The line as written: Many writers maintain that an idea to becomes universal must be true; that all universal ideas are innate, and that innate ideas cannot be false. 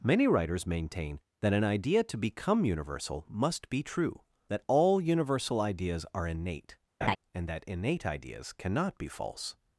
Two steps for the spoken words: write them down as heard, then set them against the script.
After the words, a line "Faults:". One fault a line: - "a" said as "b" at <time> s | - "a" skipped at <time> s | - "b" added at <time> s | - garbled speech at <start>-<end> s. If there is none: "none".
Many writers maintain that an idea to become universal must be true; that all universal ideas are innate, and that innate ideas cannot be false.
Faults:
- "becomes" said as "become" at 2.2 s